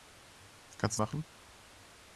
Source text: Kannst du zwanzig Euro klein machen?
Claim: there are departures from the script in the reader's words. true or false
true